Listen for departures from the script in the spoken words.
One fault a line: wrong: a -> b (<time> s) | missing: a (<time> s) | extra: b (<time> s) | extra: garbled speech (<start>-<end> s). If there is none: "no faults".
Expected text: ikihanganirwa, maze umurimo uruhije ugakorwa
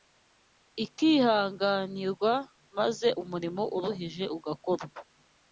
no faults